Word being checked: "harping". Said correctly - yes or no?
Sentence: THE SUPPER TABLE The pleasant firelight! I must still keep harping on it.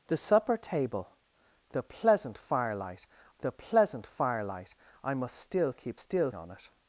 no